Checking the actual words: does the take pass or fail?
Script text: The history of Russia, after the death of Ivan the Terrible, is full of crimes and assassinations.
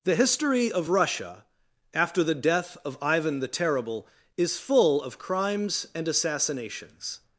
pass